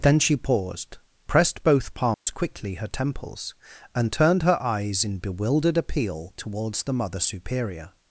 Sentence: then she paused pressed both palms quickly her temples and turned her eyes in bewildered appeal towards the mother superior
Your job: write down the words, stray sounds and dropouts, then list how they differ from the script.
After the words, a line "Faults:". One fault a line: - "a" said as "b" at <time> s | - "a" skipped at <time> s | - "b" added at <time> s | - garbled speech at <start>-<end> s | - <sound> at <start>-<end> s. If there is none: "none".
then she paused pressed both palms quickly her temples and turned her eyes in bewildered appeal towards the mother superior
Faults:
- dropout at 2.1-2.3 s